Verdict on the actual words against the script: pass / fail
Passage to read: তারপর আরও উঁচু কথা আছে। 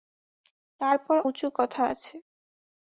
fail